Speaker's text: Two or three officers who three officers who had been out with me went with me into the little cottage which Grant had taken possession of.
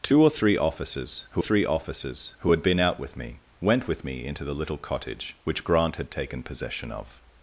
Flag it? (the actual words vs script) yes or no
no